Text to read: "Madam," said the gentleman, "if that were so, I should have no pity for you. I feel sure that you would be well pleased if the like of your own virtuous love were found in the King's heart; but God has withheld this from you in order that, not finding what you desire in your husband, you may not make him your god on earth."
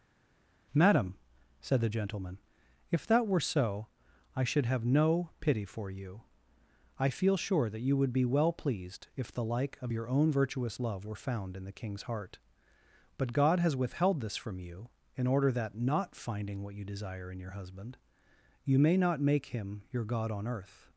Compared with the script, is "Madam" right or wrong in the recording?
right